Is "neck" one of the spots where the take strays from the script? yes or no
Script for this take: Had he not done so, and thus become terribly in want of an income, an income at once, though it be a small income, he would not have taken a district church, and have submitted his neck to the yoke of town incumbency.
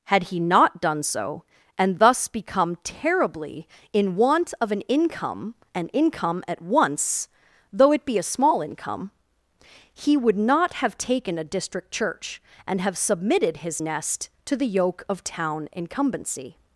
yes